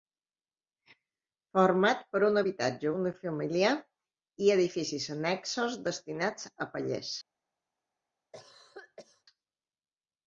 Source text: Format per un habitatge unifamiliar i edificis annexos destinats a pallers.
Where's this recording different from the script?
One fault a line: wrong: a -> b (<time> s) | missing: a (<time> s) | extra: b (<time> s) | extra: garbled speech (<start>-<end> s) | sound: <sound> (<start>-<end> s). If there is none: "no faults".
sound: cough (8.3-9.2 s)